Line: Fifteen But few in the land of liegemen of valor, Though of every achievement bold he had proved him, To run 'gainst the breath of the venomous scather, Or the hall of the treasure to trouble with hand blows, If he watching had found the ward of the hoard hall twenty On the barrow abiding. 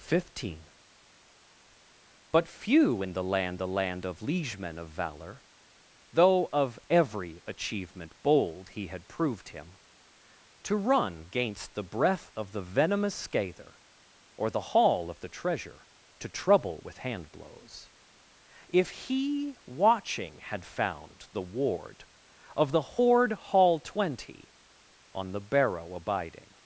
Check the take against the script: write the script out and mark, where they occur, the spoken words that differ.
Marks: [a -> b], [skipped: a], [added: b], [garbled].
Fifteen But few in the land [added: the land] of liegemen of valor, Though of every achievement bold he had proved him, To run 'gainst the breath of the venomous scather, Or the hall of the treasure to trouble with hand blows, If he watching had found the ward of the hoard hall twenty On the barrow abiding.